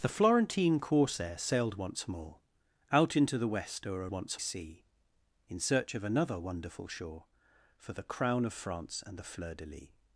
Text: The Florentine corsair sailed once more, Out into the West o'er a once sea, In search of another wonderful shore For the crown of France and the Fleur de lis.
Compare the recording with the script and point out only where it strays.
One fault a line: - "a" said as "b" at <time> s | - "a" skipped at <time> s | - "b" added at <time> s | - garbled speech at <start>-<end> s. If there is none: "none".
none